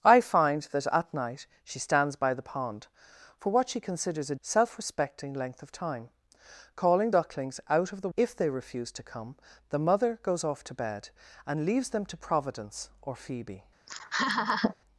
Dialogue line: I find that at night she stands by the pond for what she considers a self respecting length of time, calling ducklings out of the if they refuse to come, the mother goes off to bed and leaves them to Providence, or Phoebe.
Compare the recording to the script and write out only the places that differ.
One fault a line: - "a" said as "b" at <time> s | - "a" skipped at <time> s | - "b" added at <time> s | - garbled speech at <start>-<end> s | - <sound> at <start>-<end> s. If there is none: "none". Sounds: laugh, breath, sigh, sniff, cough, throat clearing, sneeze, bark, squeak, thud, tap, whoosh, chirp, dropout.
- laugh at 13.9-14.7 s